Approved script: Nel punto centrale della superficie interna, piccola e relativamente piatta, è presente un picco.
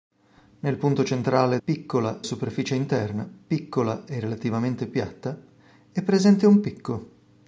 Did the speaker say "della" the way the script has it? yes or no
no